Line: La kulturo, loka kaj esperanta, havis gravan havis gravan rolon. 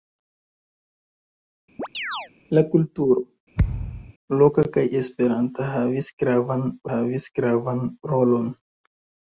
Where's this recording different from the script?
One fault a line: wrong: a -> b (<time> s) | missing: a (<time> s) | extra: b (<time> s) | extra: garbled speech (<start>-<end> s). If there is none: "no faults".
no faults